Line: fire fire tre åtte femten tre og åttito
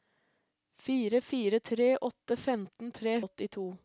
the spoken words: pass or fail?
pass